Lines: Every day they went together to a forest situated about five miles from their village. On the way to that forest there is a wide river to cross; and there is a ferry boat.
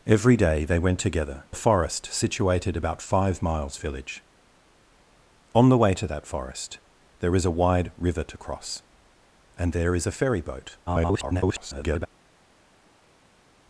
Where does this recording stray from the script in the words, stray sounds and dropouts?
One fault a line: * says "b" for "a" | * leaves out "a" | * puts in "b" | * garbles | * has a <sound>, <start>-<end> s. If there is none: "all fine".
* leaves out "to"
* leaves out "from their"
* garbles